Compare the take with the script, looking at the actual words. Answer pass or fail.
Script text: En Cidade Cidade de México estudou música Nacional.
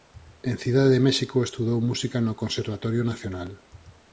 fail